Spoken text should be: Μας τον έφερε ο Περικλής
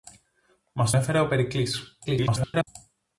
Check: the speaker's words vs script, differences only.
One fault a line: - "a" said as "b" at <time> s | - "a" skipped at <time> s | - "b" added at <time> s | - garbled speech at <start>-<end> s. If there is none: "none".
- "τον" skipped at 0.9 s
- garbled speech at 2.0-2.7 s